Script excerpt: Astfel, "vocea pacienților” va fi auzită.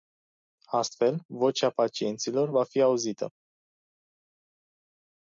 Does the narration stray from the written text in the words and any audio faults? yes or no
no